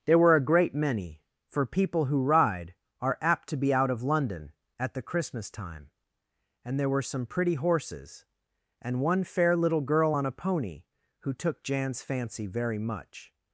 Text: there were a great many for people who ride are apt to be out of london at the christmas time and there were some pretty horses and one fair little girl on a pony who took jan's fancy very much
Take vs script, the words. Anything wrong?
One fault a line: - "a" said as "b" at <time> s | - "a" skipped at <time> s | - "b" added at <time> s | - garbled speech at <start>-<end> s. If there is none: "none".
none